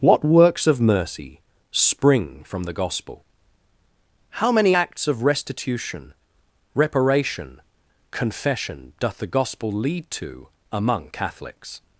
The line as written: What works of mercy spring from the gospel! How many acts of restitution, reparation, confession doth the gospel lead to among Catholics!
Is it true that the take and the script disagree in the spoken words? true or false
false